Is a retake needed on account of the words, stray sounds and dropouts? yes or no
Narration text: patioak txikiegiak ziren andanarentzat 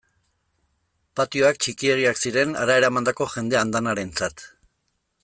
yes